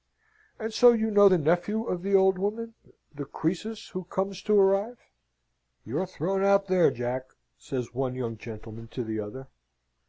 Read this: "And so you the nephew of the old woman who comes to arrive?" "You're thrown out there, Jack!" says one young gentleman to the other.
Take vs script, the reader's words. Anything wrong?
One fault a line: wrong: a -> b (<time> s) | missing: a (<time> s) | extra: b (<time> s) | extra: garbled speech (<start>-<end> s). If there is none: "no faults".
extra: know (1.1 s)
extra: the Croesus (3.1 s)